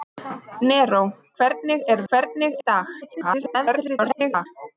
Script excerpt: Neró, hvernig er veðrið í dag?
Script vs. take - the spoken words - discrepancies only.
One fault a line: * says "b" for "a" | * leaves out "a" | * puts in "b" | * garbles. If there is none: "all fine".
* says "hvernig" for "veðrið"
* garbles